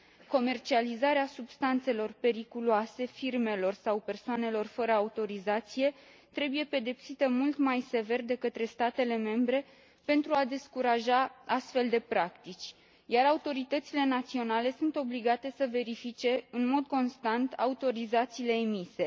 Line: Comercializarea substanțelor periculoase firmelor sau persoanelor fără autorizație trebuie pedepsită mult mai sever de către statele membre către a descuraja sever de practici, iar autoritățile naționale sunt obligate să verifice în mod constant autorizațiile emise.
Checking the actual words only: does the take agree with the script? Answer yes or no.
no